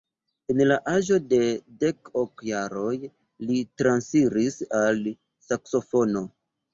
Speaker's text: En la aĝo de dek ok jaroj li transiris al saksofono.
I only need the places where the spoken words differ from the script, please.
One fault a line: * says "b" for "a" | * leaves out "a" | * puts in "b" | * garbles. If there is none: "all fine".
all fine